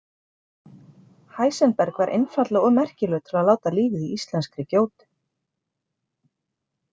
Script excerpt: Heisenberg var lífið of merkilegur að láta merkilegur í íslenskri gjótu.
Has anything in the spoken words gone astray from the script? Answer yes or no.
yes